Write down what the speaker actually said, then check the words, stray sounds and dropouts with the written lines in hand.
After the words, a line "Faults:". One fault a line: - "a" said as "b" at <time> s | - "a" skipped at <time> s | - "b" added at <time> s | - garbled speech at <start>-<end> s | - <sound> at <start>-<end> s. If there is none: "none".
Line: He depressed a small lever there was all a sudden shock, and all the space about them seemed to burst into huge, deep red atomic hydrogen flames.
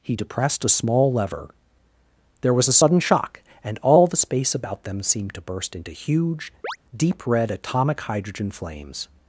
He depressed a small lever there was a sudden shock, and all the space about them seemed to burst into huge, deep red atomic hydrogen flames.
Faults:
- "all" skipped at 2.7 s
- chirp at 6.6-6.8 s